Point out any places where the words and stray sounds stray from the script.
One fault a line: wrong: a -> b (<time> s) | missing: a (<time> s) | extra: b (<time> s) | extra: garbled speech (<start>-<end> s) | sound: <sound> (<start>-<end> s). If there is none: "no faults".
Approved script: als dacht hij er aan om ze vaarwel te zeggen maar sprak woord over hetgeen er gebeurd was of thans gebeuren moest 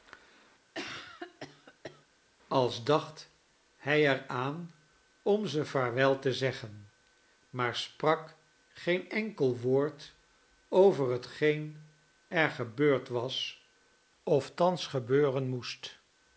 sound: cough (0.7-2.1 s)
extra: geen enkel (8.7 s)